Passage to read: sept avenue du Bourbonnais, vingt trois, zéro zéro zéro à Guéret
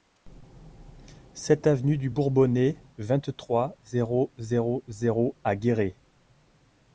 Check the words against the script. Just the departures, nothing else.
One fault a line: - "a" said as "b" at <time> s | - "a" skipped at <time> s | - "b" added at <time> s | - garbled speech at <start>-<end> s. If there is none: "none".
none